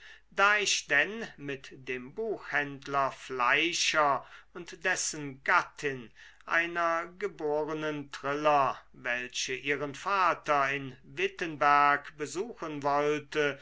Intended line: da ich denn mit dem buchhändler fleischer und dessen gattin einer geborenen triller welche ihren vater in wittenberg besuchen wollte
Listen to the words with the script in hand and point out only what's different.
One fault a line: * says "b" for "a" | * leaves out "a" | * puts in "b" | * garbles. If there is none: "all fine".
all fine